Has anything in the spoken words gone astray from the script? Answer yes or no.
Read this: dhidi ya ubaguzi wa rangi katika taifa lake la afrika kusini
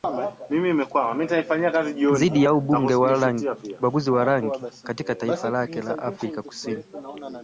no